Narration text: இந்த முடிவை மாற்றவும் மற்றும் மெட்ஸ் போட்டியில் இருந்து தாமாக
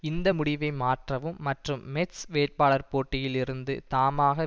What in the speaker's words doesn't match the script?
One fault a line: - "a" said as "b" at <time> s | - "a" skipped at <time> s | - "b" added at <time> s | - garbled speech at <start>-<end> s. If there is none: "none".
- "வேட்பாளர்" added at 2.3 s